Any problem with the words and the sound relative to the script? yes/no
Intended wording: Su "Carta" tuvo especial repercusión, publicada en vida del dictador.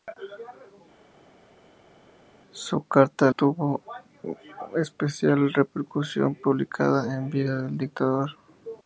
no